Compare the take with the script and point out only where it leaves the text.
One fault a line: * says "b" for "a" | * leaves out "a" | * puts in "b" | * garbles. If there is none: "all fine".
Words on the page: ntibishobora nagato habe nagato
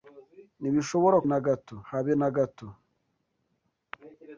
all fine